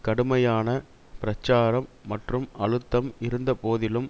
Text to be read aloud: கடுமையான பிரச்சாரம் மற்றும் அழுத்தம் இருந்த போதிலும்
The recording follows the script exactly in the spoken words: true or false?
true